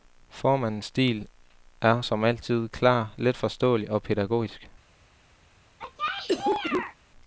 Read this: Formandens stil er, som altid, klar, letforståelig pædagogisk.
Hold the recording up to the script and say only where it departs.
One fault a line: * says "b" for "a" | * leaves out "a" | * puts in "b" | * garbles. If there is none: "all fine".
* puts in "og"